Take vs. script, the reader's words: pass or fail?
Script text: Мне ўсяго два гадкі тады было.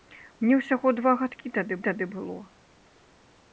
fail